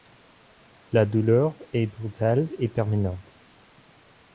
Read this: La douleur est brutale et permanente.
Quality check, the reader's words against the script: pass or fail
pass